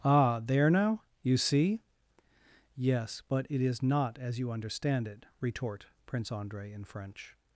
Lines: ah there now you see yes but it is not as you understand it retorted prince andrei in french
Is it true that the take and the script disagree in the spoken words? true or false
true